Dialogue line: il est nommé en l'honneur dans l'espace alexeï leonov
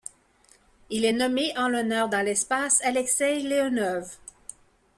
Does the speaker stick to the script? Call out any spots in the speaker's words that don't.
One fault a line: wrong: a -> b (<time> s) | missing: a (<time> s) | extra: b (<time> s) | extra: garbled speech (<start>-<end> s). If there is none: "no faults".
no faults